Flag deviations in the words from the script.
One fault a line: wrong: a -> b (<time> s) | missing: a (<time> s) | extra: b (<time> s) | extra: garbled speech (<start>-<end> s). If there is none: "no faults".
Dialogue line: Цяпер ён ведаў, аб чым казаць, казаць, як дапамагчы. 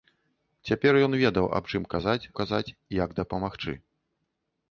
no faults